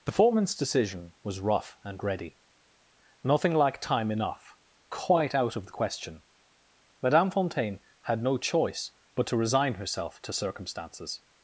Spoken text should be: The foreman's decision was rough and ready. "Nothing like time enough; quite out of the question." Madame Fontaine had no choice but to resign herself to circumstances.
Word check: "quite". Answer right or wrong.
right